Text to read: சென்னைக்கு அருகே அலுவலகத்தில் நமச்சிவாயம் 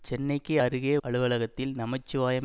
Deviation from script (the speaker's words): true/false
false